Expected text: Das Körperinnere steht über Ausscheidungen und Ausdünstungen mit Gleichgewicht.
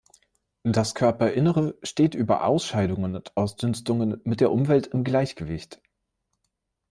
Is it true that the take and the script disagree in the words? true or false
true